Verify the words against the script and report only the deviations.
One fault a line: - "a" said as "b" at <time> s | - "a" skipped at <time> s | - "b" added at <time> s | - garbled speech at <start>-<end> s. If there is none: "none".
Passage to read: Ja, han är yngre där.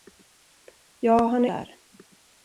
- "yngre" skipped at 1.5 s